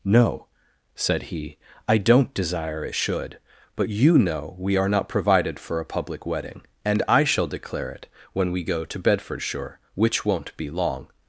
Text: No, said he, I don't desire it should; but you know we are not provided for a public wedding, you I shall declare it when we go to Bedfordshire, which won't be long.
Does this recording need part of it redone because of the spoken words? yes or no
yes